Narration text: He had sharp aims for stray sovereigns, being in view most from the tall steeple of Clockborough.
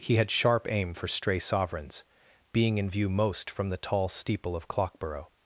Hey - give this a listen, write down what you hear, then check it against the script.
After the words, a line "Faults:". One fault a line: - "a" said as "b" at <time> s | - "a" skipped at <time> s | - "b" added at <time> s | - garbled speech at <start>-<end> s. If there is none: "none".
He had sharp aim for stray sovereigns, being in view most from the tall steeple of Clockborough.
Faults:
- "aims" said as "aim" at 0.7 s